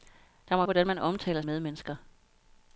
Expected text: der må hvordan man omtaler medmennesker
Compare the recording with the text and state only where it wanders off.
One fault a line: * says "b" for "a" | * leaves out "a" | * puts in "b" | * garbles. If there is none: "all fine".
all fine